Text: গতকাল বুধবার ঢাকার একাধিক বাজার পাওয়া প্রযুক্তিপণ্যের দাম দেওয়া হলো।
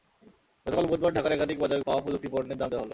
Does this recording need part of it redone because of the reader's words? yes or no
no